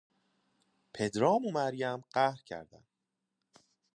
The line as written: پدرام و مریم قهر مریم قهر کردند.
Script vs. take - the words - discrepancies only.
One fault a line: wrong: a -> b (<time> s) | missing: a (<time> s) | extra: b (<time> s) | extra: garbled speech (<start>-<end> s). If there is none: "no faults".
missing: مریم قهر (2.4 s)